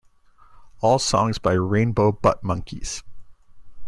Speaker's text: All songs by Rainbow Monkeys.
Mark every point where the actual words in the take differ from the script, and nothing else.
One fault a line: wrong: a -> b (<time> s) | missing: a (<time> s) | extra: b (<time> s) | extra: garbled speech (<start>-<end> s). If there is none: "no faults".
extra: Butt (2.1 s)